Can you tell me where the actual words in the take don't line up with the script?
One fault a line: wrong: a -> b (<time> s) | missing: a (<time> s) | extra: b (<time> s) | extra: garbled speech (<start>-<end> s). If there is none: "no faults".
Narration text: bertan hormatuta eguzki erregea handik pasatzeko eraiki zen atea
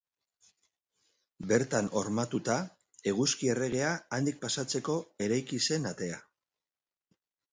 no faults